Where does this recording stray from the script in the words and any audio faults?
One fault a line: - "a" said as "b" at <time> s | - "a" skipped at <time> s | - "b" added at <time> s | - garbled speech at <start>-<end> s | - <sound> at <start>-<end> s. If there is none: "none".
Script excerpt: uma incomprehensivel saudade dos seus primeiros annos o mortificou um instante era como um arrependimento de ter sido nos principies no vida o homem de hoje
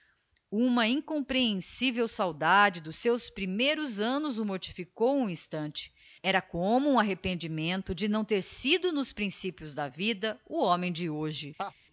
- "não" added at 8.1 s
- "no" said as "da" at 9.7 s
- laugh at 11.6-11.7 s